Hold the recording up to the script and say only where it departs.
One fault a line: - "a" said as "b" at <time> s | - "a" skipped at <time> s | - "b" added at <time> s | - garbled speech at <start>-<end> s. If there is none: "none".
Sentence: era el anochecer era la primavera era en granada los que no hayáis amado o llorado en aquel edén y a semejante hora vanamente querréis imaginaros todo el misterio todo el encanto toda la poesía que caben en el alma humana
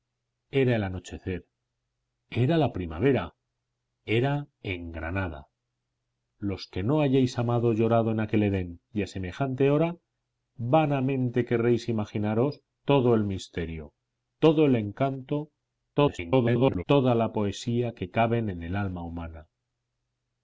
- garbled speech at 16.0-16.8 s